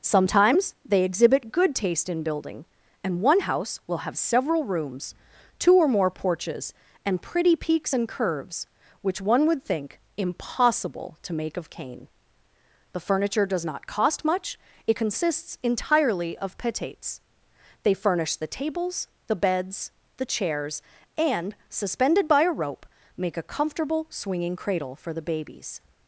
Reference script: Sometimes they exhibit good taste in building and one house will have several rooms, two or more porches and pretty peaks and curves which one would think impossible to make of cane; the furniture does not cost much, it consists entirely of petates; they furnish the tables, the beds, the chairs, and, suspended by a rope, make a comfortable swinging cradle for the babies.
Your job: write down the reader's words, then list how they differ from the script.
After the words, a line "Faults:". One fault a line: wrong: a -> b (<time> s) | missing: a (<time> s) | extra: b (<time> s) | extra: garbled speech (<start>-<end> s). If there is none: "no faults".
Sometimes they exhibit good taste in building and one house will have several rooms, two or more porches and pretty peaks and curves which one would think impossible to make of cane; the furniture does not cost much, it consists entirely of petates; they furnish the tables, the beds, the chairs, and, suspended by a rope, make a comfortable swinging cradle for the babies.
Faults:
no faults